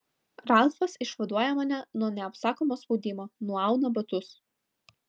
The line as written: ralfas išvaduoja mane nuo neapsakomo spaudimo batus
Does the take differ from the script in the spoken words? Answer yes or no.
yes